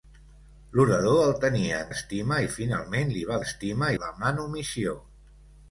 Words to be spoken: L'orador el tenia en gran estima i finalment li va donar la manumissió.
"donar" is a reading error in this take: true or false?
true